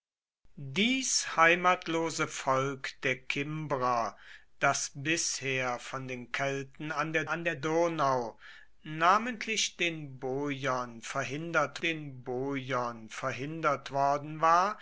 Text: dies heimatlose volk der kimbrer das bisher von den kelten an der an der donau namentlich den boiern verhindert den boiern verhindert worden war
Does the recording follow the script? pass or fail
pass